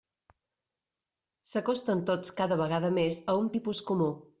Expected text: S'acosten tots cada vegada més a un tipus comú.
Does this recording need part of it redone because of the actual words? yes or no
no